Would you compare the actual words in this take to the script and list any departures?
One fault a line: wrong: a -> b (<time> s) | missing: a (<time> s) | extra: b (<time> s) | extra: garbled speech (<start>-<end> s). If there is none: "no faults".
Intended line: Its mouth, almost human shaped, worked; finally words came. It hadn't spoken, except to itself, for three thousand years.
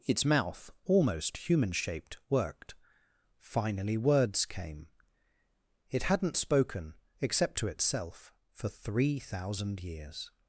no faults